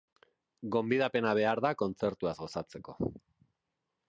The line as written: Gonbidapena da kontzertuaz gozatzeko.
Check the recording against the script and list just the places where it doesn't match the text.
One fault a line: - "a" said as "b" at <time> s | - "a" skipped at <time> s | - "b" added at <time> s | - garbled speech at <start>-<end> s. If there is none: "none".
- "behar" added at 1.4 s